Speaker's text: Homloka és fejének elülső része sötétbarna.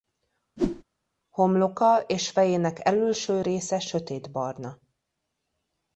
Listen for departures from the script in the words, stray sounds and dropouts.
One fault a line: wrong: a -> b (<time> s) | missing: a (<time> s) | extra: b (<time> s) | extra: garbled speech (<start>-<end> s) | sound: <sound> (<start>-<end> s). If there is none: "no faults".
sound: whoosh (0.6-0.8 s)